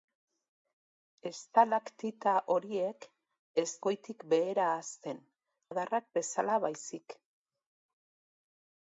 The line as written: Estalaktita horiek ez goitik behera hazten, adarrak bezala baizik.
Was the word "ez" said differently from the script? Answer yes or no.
no